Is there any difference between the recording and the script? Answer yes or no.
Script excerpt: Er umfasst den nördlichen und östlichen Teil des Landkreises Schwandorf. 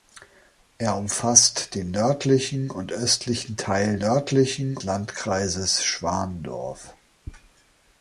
yes